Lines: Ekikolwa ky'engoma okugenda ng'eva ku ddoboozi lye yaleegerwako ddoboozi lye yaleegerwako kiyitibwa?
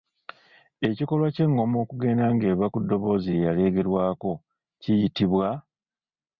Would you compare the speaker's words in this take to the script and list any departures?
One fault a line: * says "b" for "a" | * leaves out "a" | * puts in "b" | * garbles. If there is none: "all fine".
* leaves out "ddoboozi lye yaleegerwako"